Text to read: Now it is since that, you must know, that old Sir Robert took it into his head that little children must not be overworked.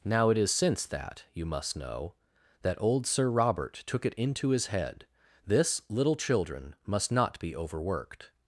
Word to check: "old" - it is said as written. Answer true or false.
true